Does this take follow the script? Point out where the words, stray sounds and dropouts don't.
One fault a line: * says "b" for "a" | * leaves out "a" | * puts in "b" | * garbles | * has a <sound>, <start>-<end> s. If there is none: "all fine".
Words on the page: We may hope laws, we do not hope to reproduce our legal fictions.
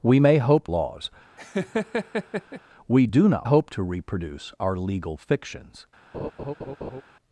* has a laugh, 1.4-2.6 s
* has a laugh, 6.1-7.0 s